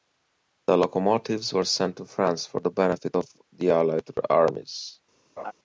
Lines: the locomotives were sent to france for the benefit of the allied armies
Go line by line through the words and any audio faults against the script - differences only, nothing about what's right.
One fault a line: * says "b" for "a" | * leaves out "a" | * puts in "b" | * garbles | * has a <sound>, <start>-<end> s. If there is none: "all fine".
* has a laugh, 5.4-5.5 s